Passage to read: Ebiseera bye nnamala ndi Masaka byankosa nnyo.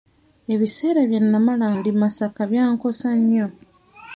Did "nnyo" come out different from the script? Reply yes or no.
no